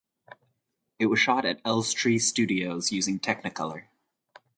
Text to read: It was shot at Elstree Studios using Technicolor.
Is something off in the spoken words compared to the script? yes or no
no